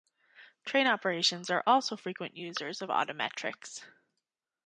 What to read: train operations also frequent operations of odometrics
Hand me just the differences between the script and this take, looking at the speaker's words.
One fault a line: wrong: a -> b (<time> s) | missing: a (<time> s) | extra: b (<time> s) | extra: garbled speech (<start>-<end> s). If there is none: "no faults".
extra: are (1.5 s)
wrong: operations -> users (2.4 s)